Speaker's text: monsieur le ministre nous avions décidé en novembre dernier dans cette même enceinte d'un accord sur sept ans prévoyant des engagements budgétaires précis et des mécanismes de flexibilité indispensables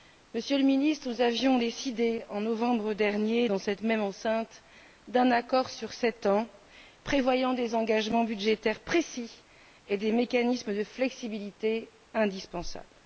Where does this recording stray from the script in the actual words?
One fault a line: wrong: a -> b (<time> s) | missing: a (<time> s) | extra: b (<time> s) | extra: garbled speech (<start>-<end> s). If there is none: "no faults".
no faults